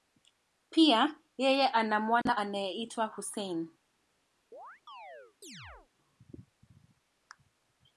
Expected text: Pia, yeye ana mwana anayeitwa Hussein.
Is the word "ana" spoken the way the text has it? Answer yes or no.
yes